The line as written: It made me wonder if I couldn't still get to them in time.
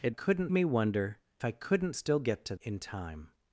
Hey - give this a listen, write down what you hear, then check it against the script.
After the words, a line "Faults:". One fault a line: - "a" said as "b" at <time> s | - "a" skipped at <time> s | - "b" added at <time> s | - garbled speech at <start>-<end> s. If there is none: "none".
It couldn't me wonder I couldn't still get to in time.
Faults:
- "made" said as "couldn't" at 0.1 s
- "if" skipped at 1.2 s
- "them" skipped at 2.5 s